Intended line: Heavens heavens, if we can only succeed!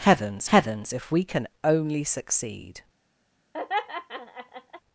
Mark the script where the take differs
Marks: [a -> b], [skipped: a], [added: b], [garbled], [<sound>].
Heavens heavens, if we can only succeed! [laugh]